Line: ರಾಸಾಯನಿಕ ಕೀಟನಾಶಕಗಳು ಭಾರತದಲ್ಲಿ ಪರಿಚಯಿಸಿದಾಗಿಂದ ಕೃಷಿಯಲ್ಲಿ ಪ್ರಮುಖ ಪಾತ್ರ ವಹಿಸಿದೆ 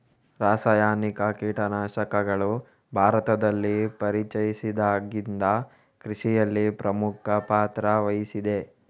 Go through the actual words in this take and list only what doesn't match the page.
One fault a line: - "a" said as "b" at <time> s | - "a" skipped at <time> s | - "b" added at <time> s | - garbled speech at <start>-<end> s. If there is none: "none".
none